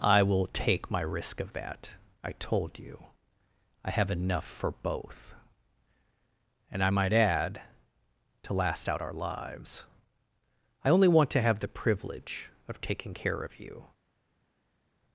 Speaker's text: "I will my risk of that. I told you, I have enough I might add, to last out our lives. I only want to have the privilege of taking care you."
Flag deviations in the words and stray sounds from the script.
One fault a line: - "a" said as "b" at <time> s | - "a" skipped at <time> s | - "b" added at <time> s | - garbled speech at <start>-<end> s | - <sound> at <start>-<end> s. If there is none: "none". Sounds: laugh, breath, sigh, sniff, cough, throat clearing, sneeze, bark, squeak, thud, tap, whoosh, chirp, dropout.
- "take" added at 0.5 s
- "for both And" added at 4.5 s
- "of" added at 13.4 s